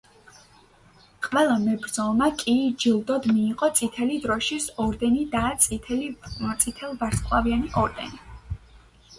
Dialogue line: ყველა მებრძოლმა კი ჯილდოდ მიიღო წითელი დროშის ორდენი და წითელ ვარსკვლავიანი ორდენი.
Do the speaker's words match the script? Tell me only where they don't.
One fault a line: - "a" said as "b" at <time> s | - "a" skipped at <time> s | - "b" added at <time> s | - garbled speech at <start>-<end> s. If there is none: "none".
none